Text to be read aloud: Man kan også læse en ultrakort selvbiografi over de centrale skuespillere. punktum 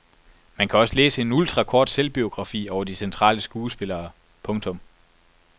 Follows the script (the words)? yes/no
yes